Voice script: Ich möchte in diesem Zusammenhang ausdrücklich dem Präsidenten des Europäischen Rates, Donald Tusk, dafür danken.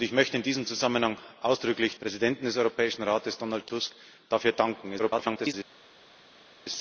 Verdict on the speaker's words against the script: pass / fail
fail